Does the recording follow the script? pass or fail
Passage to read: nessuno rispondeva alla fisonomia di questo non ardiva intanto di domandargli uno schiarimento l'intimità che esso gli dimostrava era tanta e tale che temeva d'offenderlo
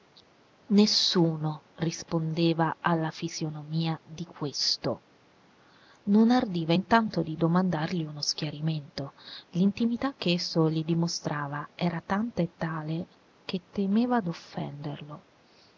pass